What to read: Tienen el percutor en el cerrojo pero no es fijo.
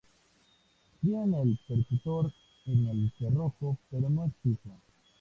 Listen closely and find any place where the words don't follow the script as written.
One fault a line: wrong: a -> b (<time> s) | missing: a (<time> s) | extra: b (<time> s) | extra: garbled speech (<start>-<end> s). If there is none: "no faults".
no faults